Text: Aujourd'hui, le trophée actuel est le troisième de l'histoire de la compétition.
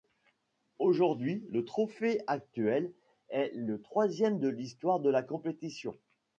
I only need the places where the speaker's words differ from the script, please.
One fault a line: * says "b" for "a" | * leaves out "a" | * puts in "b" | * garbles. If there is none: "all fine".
all fine